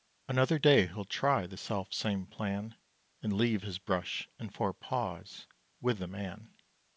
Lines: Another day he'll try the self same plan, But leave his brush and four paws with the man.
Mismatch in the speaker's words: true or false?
true